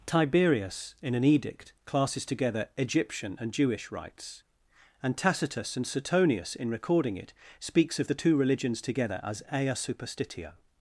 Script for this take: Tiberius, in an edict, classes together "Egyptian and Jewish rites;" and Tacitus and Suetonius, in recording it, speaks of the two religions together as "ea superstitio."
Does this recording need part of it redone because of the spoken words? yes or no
no